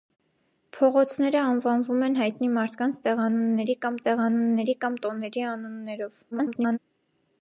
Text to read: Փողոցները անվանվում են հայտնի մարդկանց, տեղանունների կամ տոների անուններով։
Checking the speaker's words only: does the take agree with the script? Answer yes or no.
no